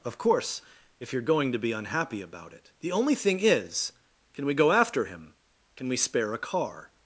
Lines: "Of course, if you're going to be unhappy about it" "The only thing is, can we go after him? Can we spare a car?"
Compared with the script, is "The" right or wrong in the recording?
right